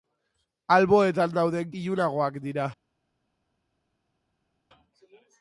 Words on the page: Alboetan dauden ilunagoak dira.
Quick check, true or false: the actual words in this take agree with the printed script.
true